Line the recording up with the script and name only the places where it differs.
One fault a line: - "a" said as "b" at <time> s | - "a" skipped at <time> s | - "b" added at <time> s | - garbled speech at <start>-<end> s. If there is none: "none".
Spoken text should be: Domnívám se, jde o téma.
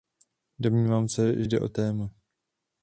none